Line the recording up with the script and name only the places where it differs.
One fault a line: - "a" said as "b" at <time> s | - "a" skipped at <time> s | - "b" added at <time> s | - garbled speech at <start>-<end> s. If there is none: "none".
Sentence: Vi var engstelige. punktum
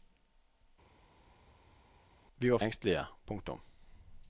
none